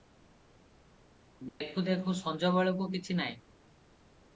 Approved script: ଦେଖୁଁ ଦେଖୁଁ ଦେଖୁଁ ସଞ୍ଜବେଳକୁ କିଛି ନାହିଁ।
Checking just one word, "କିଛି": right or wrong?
right